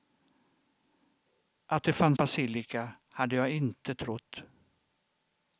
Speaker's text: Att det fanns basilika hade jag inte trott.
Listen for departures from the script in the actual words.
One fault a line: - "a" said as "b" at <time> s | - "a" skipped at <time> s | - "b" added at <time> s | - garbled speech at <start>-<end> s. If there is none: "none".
none